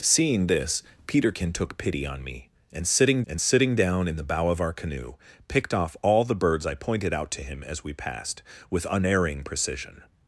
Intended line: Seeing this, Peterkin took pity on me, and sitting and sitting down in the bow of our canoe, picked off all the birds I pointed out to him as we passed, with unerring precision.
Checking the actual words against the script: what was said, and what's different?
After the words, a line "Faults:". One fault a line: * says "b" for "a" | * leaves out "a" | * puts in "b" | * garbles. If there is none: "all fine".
Seeing this, Peterkin took pity on me, and sitting and sitting down in the bow of our canoe, picked off all the birds I pointed out to him as we passed, with unerring precision.
Faults:
all fine